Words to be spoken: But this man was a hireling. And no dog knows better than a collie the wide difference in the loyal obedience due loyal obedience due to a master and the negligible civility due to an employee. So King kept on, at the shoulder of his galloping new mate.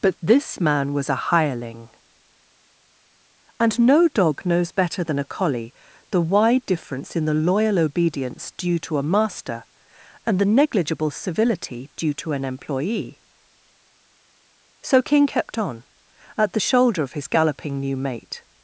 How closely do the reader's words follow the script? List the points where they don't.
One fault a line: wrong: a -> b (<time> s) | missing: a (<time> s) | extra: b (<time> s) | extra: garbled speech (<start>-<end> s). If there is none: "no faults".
missing: loyal obedience due (8.8 s)